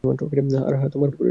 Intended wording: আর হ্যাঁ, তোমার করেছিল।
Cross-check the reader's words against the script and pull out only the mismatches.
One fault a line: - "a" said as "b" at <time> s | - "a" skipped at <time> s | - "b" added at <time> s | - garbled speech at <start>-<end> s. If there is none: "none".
none